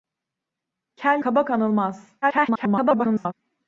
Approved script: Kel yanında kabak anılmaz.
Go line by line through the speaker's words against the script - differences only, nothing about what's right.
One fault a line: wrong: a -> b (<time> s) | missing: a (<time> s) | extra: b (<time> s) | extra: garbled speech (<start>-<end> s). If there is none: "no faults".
missing: yanında (1.2 s)
extra: garbled speech (2.2-3.3 s)